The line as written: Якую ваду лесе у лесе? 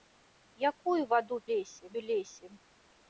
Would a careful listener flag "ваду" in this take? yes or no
no